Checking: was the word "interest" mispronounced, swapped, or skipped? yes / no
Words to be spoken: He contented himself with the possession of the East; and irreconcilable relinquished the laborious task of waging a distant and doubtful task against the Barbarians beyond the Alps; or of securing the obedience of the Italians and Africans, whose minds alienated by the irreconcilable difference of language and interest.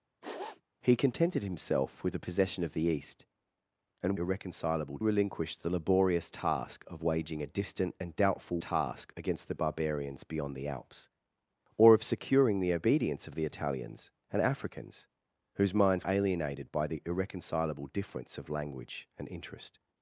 no